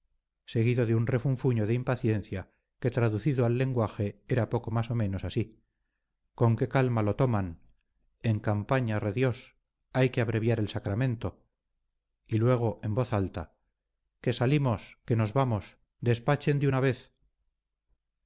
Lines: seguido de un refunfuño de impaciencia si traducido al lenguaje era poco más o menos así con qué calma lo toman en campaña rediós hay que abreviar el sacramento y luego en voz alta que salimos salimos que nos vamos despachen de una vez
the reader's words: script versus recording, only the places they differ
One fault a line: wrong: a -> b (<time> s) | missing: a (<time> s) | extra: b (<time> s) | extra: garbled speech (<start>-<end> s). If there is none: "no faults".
wrong: si -> que (2.8 s)
missing: salimos (15.0 s)